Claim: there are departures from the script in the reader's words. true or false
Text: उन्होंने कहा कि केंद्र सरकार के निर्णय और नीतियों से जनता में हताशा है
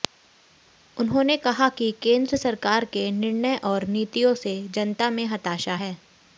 false